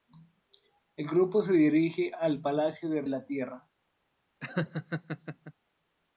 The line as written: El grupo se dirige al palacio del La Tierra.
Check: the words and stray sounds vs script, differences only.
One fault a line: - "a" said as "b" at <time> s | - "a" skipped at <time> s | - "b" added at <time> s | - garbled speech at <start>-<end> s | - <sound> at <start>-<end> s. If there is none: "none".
- laugh at 4.4-5.5 s